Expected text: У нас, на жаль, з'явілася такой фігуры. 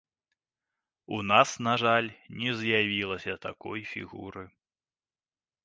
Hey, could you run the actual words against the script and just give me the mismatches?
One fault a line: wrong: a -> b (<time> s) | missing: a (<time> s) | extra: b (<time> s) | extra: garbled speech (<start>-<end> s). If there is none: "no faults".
extra: не (2.3 s)